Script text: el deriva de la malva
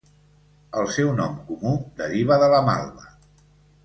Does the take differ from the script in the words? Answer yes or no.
yes